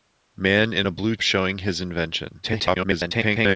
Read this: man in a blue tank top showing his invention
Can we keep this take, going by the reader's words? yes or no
no